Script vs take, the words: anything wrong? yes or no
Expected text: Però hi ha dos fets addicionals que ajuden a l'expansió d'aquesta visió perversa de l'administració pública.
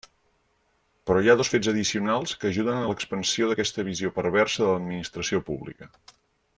no